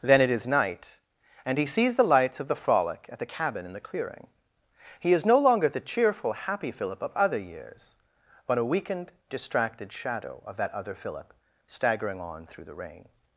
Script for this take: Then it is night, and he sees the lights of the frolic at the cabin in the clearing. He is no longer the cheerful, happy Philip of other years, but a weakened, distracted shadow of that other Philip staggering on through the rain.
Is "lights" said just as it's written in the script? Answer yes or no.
yes